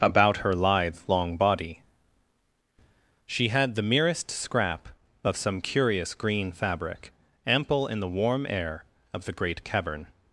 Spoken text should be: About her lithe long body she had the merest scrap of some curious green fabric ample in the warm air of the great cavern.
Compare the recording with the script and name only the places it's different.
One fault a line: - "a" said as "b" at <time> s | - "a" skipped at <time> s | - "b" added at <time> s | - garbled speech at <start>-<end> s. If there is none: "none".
none